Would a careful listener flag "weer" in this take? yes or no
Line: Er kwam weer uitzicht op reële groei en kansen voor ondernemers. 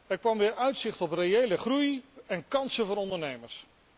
no